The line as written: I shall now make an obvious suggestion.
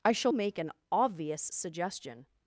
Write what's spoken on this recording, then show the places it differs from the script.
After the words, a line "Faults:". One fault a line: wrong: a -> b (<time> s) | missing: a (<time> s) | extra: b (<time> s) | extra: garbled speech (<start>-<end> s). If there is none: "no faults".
I shall make an obvious suggestion.
Faults:
missing: now (0.3 s)